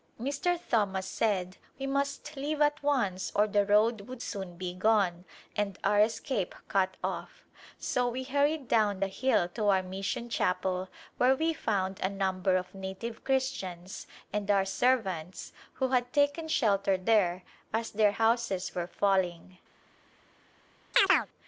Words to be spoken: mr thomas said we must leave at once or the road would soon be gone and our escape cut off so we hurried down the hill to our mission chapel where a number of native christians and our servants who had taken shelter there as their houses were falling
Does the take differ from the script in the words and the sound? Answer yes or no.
yes